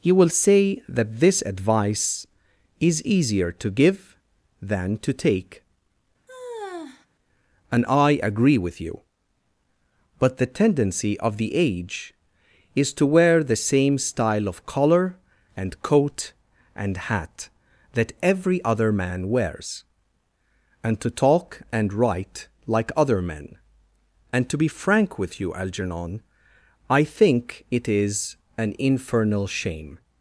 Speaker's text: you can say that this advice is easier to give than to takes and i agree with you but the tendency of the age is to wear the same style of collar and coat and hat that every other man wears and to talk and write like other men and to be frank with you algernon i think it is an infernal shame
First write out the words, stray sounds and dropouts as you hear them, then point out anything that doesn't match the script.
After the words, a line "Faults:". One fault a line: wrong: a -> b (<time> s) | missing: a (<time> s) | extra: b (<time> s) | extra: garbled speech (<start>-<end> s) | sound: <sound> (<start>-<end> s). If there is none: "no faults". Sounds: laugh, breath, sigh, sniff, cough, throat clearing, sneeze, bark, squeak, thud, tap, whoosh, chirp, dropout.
you will say that this advice is easier to give than to take and i agree with you but the tendency of the age is to wear the same style of collar and coat and hat that every other man wears and to talk and write like other men and to be frank with you algernon i think it is an infernal shame
Faults:
wrong: can -> will (0.1 s)
wrong: takes -> take (5.1 s)
sound: sigh (6.3-7.1 s)